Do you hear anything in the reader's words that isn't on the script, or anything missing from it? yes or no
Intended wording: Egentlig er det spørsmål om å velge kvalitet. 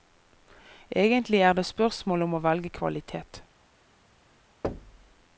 no